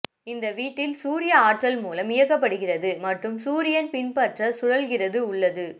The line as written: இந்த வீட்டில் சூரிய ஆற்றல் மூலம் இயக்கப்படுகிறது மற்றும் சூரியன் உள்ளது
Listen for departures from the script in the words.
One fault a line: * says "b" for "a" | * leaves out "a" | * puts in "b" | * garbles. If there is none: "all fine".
* puts in "பின்பற்ற சுழல்கிறது"